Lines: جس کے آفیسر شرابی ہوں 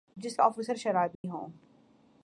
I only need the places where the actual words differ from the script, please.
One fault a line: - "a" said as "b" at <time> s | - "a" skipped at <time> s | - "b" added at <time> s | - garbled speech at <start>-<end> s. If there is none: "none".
- "کے" skipped at 0.4 s